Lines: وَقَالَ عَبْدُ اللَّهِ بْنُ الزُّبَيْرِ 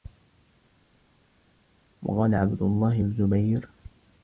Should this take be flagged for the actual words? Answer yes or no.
yes